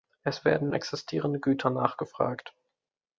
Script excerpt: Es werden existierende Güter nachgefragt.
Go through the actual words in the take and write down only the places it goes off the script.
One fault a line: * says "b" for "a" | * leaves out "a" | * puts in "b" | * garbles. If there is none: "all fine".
all fine